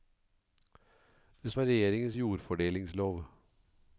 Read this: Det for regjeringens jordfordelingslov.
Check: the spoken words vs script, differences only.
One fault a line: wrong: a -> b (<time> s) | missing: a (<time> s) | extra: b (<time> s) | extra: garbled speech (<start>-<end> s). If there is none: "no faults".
no faults